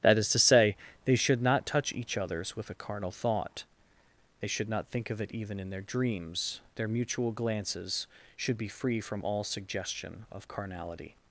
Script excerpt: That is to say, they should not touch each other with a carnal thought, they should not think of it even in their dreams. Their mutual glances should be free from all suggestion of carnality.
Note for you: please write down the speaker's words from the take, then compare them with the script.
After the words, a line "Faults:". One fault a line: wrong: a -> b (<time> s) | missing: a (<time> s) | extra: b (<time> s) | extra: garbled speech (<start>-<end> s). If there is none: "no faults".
That is to say, they should not touch each others with a carnal thought, they should not think of it even in their dreams. Their mutual glances should be free from all suggestion of carnality.
Faults:
wrong: other -> others (2.2 s)